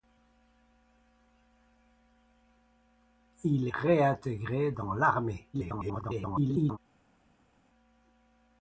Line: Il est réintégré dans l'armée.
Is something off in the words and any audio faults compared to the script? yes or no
yes